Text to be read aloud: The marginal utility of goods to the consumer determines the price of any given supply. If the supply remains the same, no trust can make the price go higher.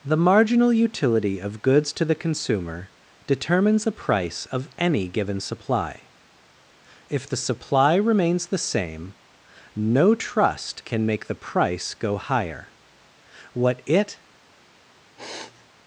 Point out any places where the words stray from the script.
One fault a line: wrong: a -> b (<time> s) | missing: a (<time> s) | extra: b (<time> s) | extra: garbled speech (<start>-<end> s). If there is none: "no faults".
extra: What it (13.5 s)